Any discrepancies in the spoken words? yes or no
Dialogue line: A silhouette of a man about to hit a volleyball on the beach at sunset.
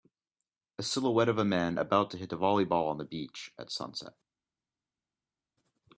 no